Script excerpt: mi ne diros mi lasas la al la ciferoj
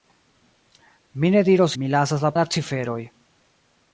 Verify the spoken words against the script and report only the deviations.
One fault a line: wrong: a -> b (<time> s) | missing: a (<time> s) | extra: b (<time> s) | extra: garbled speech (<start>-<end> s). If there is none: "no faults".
no faults